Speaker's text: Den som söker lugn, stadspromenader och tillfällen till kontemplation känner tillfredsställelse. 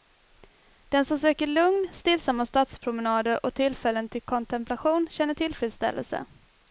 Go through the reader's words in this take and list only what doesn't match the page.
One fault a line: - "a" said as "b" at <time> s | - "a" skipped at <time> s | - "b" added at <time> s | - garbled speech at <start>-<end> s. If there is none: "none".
- "stillsamma" added at 1.9 s